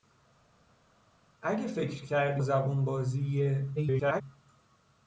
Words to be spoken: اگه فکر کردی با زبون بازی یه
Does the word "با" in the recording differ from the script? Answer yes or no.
yes